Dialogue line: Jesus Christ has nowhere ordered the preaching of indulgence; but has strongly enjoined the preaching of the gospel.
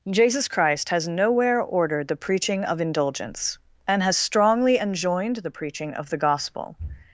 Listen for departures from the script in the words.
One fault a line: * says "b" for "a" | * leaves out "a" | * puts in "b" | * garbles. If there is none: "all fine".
* says "and" for "but"